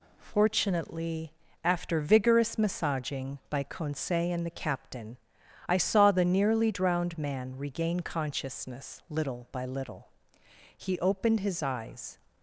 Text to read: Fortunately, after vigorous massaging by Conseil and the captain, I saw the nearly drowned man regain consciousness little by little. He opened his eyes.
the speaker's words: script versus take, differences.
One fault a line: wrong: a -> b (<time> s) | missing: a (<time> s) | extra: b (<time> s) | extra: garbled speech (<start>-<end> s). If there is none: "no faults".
no faults